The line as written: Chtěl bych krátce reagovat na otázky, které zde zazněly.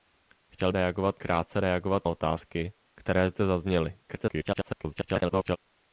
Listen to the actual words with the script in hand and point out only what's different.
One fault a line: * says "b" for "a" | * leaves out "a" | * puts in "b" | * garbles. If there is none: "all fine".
* says "reagovat" for "bych"
* leaves out "na"
* garbles